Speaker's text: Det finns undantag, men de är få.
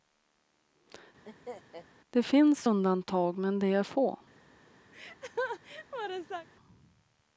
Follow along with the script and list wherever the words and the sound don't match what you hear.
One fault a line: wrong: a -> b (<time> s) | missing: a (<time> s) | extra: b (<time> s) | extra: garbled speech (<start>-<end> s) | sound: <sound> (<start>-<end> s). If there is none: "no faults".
sound: laugh (1.3-1.9 s)
sound: laugh (4.9-6.5 s)